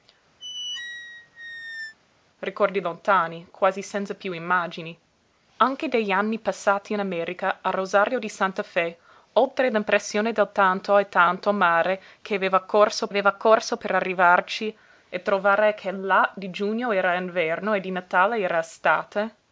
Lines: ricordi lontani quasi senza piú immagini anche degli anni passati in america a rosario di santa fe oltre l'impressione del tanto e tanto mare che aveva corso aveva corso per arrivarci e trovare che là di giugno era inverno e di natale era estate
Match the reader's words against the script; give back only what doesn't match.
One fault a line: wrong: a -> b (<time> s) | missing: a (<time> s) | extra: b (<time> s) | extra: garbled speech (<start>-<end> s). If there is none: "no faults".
no faults